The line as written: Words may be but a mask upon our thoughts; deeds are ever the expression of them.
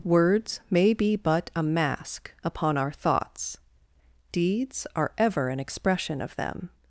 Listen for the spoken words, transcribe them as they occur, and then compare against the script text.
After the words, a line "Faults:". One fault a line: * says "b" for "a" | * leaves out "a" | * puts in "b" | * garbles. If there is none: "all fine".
Words may be but a mask upon our thoughts; deeds are ever an expression of them.
Faults:
* says "an" for "the"